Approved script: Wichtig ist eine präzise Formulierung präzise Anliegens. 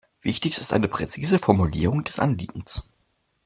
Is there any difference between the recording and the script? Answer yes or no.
yes